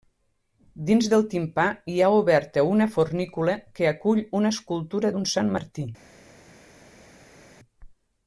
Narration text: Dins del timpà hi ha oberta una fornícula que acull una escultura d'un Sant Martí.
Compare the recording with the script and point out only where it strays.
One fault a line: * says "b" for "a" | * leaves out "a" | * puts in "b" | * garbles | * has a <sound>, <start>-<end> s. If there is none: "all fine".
all fine